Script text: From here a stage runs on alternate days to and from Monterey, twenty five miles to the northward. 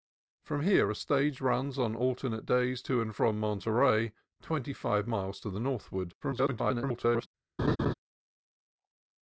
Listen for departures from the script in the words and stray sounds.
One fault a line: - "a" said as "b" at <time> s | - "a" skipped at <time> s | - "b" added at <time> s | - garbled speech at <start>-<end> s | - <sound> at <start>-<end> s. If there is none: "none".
- garbled speech at 6.2-7.3 s
- laugh at 7.6-7.9 s